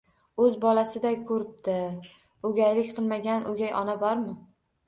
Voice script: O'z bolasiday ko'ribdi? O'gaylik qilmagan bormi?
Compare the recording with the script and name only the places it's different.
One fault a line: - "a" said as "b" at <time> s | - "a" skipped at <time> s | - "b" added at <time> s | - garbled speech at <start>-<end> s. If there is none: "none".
- "o'gay ona" added at 3.5 s